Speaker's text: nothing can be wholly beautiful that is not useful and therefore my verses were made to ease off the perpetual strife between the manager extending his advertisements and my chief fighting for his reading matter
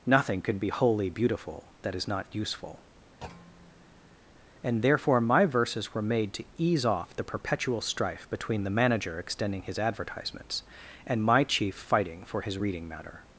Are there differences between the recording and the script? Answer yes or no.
no